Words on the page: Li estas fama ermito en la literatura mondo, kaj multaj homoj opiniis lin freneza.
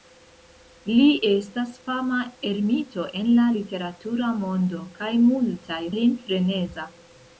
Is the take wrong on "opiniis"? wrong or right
wrong